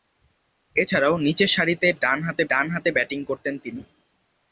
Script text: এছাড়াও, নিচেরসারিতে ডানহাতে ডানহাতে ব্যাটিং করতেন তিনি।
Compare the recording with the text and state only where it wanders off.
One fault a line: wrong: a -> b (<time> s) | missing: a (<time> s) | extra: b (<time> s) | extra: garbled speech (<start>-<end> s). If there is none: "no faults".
no faults